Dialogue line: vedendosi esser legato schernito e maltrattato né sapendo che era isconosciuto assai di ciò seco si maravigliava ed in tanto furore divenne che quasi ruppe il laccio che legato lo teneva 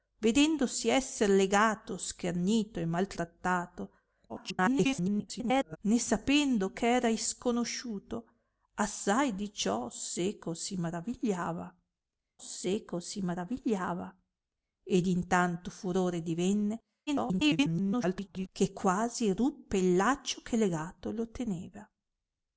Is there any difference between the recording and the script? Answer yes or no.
yes